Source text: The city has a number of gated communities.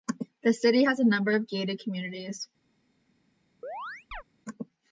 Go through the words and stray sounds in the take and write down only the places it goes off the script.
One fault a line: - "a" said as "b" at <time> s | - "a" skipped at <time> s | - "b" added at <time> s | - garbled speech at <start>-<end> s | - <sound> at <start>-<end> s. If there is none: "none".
- chirp at 3.6-4.2 s